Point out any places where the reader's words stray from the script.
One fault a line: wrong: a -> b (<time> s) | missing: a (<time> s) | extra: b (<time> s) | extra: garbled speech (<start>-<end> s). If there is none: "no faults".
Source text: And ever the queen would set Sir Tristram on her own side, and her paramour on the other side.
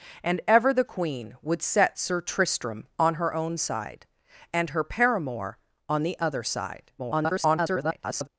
extra: garbled speech (7.0-8.3 s)